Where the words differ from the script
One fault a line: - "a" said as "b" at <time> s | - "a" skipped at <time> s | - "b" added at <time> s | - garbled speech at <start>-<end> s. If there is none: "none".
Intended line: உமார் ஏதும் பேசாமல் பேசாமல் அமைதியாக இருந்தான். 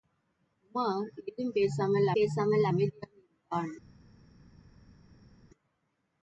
none